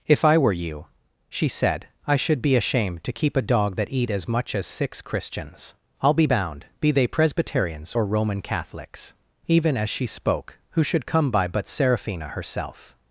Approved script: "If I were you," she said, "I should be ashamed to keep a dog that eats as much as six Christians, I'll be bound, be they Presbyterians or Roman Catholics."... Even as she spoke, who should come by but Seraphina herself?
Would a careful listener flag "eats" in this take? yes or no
yes